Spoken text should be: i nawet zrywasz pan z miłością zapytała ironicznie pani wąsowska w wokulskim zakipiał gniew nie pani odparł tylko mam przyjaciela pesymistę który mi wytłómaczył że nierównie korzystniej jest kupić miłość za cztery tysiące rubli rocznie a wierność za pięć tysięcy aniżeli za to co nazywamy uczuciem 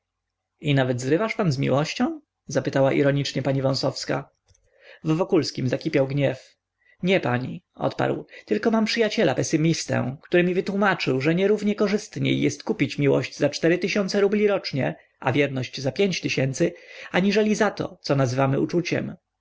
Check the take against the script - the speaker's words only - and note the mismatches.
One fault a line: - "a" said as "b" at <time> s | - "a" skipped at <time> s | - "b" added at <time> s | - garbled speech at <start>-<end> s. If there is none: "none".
none